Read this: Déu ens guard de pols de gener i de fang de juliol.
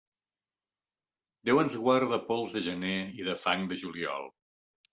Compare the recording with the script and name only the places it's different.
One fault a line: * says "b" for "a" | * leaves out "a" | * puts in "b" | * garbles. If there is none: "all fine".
all fine